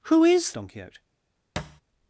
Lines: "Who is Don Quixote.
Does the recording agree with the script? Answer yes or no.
yes